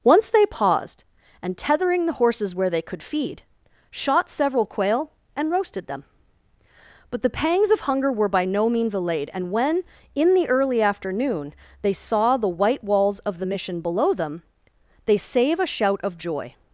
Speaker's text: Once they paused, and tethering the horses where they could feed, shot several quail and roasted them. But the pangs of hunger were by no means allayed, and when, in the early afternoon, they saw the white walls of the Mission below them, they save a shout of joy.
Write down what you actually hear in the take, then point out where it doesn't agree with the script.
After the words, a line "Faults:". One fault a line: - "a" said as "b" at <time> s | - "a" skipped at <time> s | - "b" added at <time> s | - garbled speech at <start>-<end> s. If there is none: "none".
Once they paused, and tethering the horses where they could feed, shot several quail and roasted them. But the pangs of hunger were by no means allayed, and when, in the early afternoon, they saw the white walls of the Mission below them, they save a shout of joy.
Faults:
none